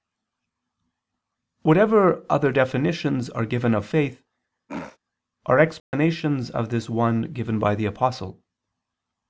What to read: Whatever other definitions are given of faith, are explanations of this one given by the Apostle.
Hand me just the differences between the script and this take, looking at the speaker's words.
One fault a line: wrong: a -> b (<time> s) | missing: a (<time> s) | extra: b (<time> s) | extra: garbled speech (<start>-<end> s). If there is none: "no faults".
no faults